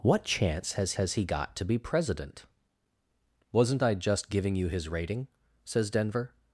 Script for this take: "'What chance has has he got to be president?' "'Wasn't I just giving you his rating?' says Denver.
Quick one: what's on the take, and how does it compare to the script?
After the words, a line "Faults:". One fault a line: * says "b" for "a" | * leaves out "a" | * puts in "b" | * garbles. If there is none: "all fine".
"'What chance has has he got to be president?' "'Wasn't I just giving you his rating?' says Denver.
Faults:
all fine